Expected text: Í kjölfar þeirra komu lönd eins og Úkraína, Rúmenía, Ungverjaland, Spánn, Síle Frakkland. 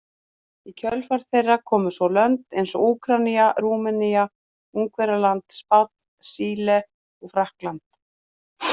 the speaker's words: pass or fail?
fail